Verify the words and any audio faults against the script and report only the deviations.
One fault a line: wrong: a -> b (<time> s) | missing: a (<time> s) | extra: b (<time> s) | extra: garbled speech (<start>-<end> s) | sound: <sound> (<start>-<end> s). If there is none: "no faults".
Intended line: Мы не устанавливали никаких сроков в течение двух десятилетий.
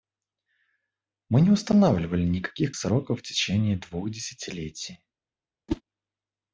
sound: whoosh (5.7-5.8 s)